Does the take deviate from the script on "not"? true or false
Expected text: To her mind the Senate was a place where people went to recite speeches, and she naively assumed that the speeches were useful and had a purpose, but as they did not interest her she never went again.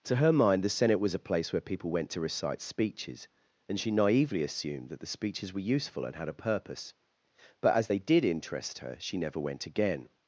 true